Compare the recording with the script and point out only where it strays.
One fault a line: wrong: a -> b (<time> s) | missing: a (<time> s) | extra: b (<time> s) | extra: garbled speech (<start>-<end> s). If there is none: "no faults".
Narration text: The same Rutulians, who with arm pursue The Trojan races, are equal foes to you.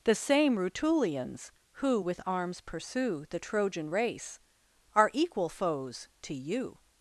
wrong: arm -> arms (2.2 s)
wrong: races -> race (3.9 s)